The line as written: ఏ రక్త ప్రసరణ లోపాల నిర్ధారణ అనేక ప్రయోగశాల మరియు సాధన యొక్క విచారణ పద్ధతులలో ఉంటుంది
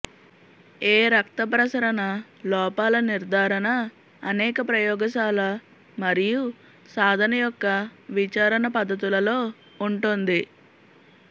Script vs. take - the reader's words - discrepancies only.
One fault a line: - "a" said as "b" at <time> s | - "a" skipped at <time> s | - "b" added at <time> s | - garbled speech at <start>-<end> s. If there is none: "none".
none